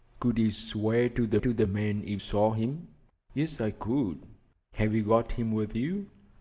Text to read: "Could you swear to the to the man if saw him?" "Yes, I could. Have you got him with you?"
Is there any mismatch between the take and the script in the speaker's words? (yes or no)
no